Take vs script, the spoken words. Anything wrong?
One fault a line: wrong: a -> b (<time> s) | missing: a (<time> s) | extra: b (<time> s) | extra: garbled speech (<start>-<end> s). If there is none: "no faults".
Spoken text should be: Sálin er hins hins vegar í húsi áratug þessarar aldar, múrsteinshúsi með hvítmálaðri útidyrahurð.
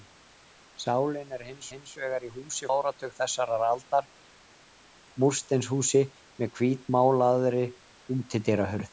no faults